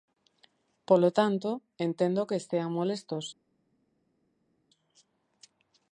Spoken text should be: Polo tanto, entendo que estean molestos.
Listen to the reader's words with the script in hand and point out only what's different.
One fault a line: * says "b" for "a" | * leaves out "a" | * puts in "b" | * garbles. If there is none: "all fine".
all fine